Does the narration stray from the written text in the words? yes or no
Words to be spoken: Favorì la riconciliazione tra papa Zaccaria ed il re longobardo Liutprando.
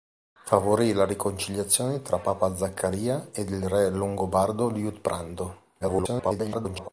yes